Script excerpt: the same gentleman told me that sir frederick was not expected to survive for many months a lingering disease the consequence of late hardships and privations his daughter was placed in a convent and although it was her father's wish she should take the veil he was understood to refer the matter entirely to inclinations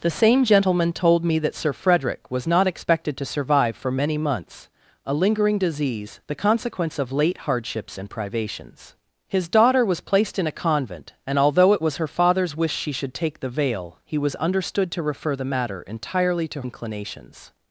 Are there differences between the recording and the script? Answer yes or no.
no